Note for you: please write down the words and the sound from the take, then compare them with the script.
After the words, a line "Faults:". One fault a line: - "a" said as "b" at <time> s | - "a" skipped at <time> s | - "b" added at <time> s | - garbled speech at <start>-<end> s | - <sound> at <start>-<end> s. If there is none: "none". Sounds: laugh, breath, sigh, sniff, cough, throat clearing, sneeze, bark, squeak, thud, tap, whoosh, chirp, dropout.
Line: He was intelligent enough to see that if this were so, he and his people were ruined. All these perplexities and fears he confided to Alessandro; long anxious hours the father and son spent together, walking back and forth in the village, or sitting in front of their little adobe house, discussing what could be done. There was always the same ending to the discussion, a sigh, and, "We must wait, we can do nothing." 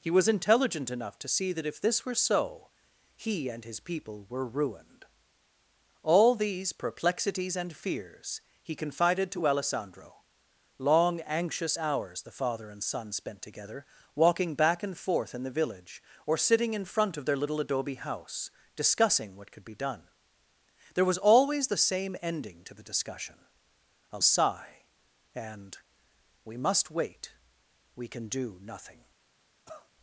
He was intelligent enough to see that if this were so, he and his people were ruined. All these perplexities and fears he confided to Alessandro; long anxious hours the father and son spent together, walking back and forth in the village, or sitting in front of their little adobe house, discussing what could be done. There was always the same ending to the discussion, a sigh, and, "We must wait, we can do nothing."
Faults:
- cough at 29.7-29.9 s